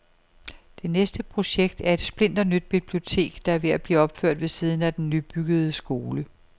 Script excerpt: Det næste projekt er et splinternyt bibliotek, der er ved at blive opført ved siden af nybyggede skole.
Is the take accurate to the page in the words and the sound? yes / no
no